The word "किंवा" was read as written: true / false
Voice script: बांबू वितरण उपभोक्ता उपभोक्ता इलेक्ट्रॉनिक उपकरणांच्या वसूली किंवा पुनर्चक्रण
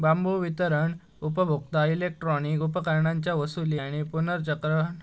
false